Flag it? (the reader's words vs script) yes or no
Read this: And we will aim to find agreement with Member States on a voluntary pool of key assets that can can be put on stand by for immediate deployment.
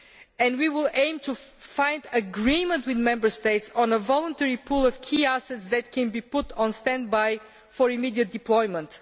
yes